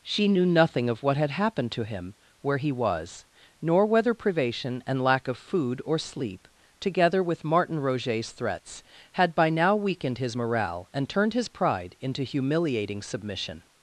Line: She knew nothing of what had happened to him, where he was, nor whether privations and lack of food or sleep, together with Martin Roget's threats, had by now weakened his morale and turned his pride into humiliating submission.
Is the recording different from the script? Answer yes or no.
yes